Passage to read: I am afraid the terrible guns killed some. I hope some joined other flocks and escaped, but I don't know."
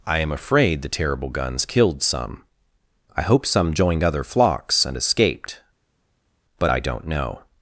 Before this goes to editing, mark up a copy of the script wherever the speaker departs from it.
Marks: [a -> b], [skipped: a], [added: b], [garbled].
I am afraid the terrible guns killed some. I hope some joined other flocks and escaped, but I don't know."